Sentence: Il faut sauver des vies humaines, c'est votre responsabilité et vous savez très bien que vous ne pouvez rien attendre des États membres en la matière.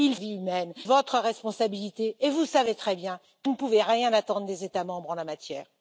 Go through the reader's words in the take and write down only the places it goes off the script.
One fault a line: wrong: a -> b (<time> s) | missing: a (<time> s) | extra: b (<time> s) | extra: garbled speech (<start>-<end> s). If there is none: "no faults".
missing: faut sauver des (0.1 s)
missing: c'est (0.7 s)
missing: vous (3.5 s)